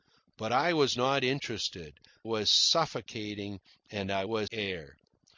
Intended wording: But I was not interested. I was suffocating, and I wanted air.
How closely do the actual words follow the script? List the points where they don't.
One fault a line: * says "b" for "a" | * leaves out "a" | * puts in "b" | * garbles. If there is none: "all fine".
* leaves out "I"
* says "was" for "wanted"